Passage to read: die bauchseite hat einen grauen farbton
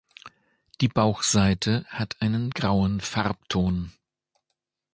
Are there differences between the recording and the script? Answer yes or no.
no